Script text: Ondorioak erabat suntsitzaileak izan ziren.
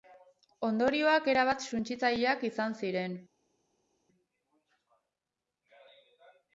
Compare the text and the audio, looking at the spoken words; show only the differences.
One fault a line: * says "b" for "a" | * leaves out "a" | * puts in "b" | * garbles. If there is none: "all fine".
all fine